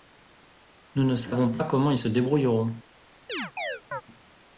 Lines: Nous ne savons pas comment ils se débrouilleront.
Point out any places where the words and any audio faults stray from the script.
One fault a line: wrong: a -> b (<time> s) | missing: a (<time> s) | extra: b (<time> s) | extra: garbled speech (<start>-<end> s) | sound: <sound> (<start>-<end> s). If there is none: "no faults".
sound: chirp (3.3-4.0 s)